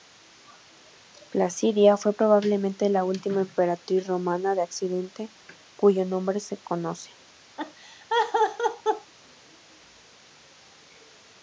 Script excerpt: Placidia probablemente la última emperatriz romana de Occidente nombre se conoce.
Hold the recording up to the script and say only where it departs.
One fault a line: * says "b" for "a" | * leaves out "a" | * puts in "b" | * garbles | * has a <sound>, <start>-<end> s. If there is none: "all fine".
* puts in "fue"
* puts in "cuyo"
* has a laugh, 7.6-9.1 s